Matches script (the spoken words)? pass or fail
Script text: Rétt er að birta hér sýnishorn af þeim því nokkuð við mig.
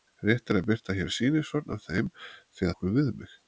pass